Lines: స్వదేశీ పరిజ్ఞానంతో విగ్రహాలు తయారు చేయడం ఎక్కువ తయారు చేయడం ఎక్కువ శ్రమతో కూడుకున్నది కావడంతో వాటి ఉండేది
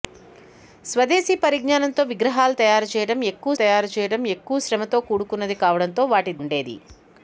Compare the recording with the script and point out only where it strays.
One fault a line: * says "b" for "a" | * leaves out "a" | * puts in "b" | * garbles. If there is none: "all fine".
all fine